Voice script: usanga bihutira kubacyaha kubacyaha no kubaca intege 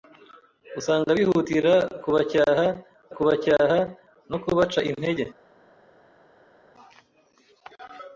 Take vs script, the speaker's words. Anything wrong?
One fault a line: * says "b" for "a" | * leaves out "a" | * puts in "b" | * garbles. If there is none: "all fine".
all fine